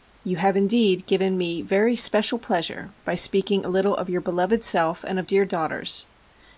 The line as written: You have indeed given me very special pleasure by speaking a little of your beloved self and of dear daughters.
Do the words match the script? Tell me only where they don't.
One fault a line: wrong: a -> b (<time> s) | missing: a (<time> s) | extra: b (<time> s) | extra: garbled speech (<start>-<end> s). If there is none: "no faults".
no faults